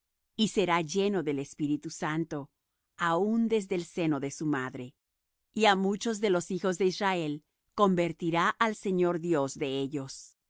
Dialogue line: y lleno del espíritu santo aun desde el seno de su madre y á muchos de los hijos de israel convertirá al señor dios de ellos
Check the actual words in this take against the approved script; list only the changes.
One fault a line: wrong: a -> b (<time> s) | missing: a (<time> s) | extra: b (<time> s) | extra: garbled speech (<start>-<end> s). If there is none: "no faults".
extra: será (0.5 s)